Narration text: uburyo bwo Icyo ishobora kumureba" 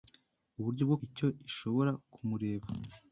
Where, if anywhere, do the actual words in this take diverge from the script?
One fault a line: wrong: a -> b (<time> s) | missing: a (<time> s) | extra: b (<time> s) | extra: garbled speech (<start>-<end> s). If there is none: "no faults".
no faults